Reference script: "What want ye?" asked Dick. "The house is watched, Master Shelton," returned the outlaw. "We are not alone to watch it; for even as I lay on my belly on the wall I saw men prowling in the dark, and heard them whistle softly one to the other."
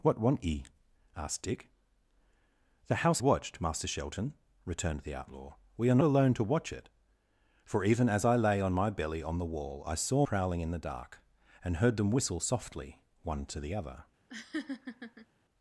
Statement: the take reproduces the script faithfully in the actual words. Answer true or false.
false